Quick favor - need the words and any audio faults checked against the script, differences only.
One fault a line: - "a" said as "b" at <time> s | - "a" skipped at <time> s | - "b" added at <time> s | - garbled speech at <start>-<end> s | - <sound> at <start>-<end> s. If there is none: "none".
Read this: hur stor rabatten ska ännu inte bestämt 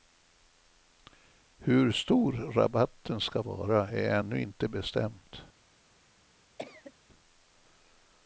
- "vara är" added at 3.4 s
- cough at 6.6-6.9 s